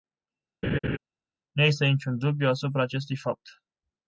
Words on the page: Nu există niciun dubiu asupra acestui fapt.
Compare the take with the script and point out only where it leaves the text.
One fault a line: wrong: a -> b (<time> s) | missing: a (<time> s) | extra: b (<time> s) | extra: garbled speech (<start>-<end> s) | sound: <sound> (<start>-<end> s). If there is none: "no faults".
sound: laugh (0.6-1.0 s)